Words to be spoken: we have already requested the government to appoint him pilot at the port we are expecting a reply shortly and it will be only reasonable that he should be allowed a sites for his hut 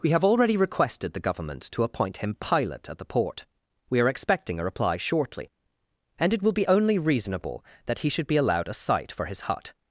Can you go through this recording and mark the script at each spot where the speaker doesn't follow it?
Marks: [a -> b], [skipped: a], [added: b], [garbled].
we have already requested the government to appoint him pilot at the port we are expecting a reply shortly and it will be only reasonable that he should be allowed a [sites -> site] for his hut